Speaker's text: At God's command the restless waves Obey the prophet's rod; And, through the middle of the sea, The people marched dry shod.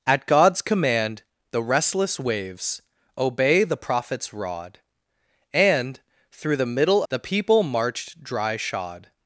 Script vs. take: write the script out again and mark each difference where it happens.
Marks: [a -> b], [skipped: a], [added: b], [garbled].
At God's command the restless waves Obey the prophet's rod; And, through the middle [skipped: of the sea,] The people marched dry shod.